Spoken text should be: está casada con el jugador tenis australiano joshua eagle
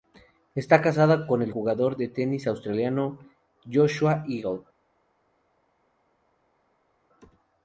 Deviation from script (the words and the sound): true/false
true